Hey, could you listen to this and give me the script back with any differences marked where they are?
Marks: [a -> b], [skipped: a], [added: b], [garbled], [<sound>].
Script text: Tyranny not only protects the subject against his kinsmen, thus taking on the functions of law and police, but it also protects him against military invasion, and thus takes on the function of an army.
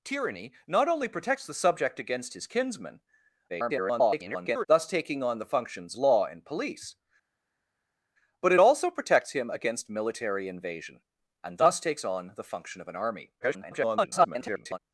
Tyranny not only protects the subject against his kinsmen, [garbled] thus taking on the functions [skipped: of] law and police, but it also protects him against military invasion, and thus takes on the function of an army. [garbled]